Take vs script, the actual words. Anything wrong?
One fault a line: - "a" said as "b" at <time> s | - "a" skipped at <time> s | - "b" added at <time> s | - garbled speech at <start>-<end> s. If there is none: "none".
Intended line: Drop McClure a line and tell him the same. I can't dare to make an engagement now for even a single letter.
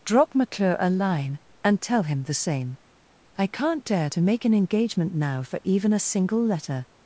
none